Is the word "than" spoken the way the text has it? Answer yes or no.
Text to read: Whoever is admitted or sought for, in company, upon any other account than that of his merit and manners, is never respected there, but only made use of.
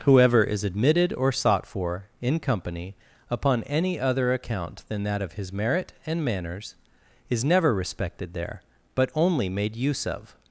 yes